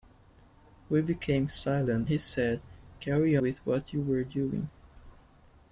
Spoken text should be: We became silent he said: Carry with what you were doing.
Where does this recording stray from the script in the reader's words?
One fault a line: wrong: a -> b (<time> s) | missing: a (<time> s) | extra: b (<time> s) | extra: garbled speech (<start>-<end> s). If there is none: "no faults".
no faults